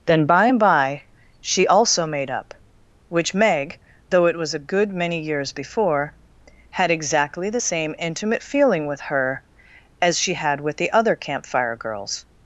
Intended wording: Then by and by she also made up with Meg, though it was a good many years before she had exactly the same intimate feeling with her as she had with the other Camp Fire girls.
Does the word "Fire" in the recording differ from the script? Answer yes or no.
no